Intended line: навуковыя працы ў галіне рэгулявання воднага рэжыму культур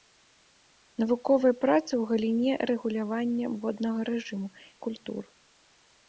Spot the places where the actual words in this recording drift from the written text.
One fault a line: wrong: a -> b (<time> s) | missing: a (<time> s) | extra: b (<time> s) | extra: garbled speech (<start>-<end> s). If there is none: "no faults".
no faults